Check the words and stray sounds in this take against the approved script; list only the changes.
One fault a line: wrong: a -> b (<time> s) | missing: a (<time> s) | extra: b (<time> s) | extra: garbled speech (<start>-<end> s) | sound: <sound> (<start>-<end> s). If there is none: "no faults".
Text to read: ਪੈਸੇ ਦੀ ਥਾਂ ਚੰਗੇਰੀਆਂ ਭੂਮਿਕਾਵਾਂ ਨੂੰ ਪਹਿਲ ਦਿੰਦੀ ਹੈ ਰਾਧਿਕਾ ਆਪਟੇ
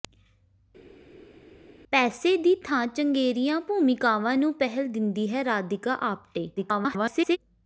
extra: garbled speech (6.6-7.4 s)